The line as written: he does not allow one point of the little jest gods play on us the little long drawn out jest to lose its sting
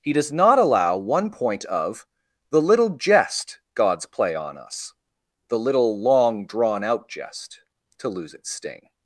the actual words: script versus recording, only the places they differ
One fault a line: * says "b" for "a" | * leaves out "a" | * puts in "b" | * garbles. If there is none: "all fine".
all fine